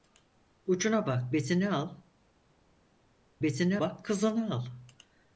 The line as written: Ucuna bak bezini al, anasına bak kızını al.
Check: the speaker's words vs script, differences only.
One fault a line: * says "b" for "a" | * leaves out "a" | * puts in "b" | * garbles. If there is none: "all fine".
* says "bezini" for "anasına"